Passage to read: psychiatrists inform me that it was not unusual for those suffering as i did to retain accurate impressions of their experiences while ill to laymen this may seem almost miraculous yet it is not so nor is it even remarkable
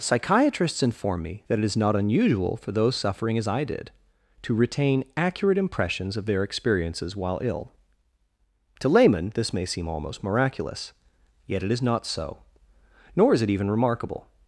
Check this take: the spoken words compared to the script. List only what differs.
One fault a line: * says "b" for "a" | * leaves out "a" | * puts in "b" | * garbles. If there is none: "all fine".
* says "is" for "was"